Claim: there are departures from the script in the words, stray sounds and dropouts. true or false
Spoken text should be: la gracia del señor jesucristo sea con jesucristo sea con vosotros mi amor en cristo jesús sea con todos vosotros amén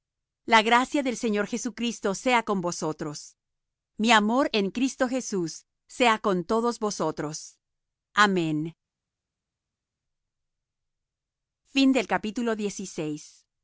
true